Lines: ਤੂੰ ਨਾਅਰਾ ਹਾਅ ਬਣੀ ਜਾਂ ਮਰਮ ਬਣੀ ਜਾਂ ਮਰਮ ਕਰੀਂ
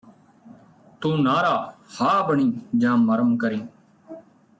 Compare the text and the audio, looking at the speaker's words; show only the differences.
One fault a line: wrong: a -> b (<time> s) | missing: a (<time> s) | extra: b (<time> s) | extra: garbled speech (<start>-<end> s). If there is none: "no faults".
missing: ਬਣੀ ਜਾਂ ਮਰਮ (3.4 s)